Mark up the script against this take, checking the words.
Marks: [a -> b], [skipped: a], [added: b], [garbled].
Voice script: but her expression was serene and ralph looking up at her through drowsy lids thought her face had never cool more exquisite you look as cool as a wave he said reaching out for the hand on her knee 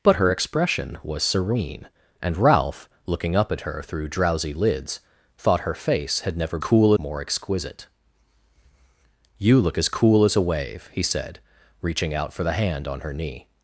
but her expression was serene and ralph looking up at her through drowsy lids thought her face had never cool more exquisite you look as cool as a wave he said reaching out for the hand on her knee